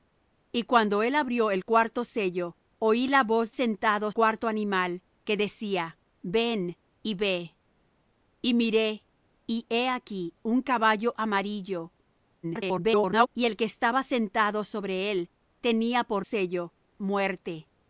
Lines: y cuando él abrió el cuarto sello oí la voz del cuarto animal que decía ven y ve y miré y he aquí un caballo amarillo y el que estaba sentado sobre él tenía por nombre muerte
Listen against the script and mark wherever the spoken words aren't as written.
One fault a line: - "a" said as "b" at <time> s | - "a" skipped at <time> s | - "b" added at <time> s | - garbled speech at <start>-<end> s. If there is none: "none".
- "del" said as "sentado" at 3.5 s
- garbled speech at 12.4-13.3 s
- "nombre" said as "sello" at 16.2 s